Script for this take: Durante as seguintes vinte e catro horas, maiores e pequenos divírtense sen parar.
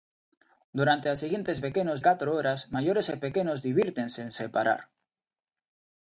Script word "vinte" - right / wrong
wrong